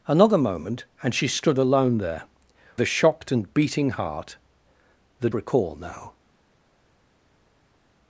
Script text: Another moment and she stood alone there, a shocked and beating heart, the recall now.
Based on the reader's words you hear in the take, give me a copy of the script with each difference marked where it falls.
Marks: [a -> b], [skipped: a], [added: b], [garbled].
Another moment and she stood alone there, a shocked and beating heart, the recall now.